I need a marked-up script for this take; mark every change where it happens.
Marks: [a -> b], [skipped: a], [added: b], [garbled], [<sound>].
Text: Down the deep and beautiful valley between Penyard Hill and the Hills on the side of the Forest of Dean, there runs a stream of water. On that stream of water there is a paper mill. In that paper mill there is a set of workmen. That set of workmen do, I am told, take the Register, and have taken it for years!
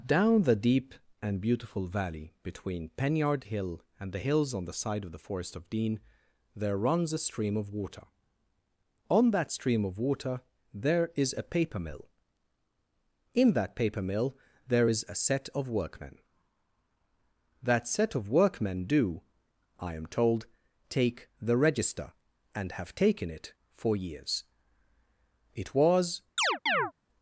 Down the deep and beautiful valley between Penyard Hill and the Hills on the side of the Forest of Dean, there runs a stream of water. On that stream of water there is a paper mill. In that paper mill there is a set of workmen. That set of workmen do, I am told, take the Register, and have taken it for years! [added: It was] [chirp]